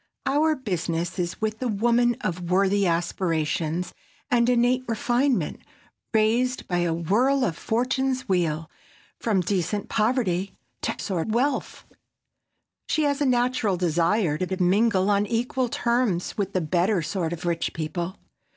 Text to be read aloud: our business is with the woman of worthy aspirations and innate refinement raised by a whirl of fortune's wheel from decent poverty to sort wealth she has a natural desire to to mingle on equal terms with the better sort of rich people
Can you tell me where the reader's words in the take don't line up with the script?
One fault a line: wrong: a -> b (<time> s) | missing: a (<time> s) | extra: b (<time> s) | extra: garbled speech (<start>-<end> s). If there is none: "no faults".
no faults